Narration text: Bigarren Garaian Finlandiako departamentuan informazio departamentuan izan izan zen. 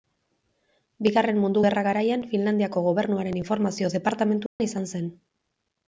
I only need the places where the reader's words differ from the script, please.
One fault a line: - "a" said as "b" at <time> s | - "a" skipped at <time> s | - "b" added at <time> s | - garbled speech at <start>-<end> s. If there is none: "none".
- "Mundu Gerra" added at 1.4 s
- "departamentuan" said as "gobernuaren" at 2.9 s
- "izan" skipped at 4.9 s